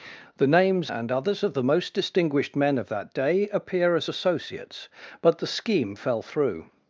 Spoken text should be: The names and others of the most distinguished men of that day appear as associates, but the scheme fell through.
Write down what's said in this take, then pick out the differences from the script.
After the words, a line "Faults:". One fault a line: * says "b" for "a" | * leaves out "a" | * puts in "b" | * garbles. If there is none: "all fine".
The names and others of the most distinguished men of that day appear as associates, but the scheme fell through.
Faults:
all fine